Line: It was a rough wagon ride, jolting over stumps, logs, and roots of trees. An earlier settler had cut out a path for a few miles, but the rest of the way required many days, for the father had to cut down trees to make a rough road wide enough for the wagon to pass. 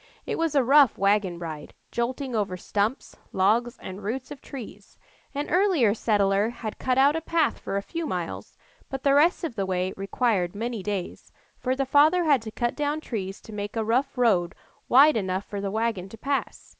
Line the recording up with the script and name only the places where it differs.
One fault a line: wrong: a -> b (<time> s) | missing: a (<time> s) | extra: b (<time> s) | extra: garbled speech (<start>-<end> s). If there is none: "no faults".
no faults